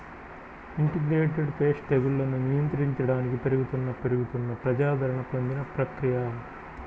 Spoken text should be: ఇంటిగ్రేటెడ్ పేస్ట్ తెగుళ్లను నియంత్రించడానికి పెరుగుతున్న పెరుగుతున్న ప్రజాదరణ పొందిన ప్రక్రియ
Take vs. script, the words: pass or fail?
pass